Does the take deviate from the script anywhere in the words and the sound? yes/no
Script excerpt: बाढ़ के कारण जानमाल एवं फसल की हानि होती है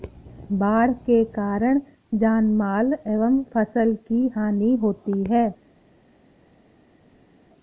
no